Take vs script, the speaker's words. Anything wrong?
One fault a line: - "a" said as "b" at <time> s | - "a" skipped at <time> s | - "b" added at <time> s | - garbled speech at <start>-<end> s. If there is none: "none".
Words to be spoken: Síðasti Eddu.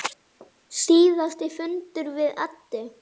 - "fundur við" added at 1.6 s